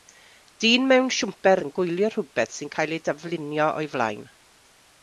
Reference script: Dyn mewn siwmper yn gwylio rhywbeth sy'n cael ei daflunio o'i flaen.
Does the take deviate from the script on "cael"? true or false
false